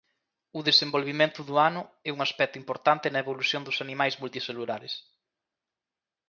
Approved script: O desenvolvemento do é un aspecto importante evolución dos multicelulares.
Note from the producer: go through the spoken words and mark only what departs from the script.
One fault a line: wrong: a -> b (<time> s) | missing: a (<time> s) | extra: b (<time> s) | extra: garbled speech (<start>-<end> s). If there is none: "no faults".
extra: ano (1.7 s)
extra: na (3.1 s)
extra: animais (3.9 s)